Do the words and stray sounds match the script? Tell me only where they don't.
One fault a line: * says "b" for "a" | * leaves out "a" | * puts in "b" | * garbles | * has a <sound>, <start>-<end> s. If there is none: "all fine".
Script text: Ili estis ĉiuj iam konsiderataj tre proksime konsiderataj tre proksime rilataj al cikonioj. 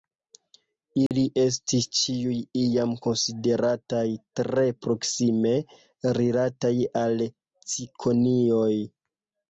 * has a dropout, 1.1-1.1 s
* leaves out "konsiderataj tre proksime"